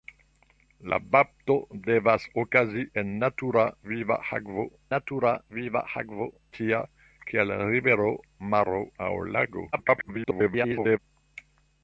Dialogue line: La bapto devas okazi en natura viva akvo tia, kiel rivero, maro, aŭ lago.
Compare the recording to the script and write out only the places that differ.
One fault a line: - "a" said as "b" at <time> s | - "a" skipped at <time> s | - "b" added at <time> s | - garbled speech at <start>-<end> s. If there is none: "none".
- "natura viva akvo" added at 4.9 s
- garbled speech at 9.7-11.0 s